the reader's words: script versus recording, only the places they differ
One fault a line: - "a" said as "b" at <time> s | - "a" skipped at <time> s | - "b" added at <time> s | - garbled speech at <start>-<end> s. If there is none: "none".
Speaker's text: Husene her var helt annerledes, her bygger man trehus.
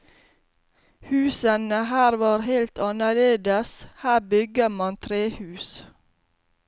none